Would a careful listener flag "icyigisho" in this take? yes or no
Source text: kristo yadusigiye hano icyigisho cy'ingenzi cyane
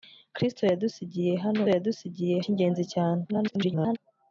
yes